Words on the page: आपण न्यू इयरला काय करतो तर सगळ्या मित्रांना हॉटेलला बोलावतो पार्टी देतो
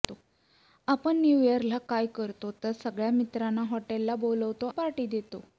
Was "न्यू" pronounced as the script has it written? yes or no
yes